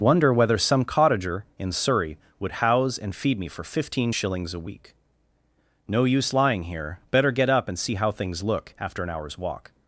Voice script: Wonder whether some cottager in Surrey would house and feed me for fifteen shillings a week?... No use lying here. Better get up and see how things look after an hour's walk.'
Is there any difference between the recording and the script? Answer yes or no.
no